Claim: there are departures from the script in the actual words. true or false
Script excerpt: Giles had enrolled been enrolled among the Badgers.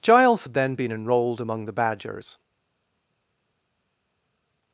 true